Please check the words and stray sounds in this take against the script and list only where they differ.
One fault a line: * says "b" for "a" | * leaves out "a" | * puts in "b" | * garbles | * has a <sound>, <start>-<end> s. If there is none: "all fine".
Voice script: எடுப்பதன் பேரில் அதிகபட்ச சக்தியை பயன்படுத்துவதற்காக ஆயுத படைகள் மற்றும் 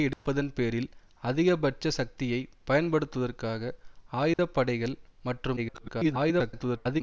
* has a dropout, 0.1-0.3 s
* has a dropout, 4.3-4.4 s
* garbles